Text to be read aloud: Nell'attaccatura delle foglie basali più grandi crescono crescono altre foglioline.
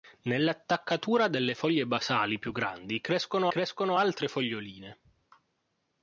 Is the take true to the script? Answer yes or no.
yes